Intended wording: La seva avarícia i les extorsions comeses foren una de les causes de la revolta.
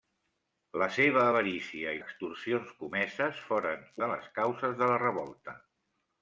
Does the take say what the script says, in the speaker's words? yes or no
no